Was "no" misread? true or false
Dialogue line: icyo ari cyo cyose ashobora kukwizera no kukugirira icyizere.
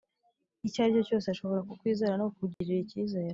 false